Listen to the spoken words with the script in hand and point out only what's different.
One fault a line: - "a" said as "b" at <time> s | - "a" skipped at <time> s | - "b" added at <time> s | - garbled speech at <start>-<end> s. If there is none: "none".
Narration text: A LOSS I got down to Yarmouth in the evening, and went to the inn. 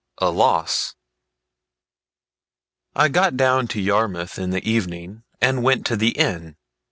none